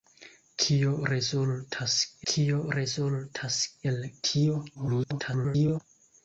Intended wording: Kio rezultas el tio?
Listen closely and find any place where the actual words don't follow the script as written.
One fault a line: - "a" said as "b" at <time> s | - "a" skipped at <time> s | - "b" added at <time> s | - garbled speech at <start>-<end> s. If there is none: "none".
- "kio rezultas" added at 2.3 s
- garbled speech at 4.7-5.8 s